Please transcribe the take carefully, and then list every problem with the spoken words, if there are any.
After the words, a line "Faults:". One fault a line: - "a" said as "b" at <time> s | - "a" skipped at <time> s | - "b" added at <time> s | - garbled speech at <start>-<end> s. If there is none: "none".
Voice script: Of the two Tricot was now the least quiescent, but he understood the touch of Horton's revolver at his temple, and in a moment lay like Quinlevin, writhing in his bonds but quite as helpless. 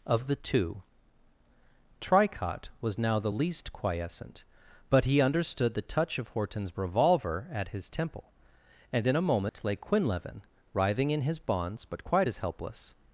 Of the two Tricot was now the least quiescent, but he understood the touch of Horton's revolver at his temple, and in a moment lay Quinlevin, writhing in his bonds but quite as helpless.
Faults:
- "like" skipped at 9.7 s